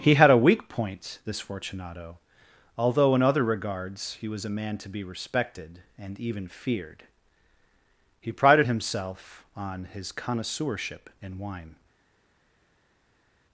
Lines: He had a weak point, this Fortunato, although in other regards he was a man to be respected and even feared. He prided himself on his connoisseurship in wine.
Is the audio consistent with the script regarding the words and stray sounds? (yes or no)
yes